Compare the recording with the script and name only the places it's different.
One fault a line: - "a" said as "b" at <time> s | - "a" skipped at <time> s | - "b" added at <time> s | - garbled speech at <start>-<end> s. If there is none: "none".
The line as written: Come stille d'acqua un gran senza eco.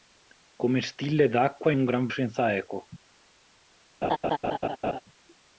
none